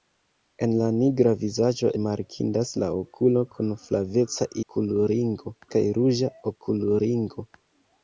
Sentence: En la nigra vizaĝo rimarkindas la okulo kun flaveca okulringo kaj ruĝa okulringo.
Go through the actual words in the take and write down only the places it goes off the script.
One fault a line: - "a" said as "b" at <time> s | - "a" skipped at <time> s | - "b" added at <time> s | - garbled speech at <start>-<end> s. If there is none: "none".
none